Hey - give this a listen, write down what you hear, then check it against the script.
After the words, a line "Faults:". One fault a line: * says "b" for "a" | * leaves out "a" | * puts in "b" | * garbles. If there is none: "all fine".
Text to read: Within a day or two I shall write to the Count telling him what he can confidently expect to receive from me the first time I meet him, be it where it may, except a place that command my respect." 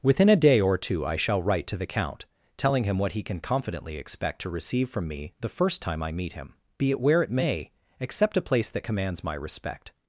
Within a day or two I shall write to the Count telling him what he can confidently expect to receive from me the first time I meet him, be it where it may, except a place that commands my respect."
Faults:
* says "commands" for "command"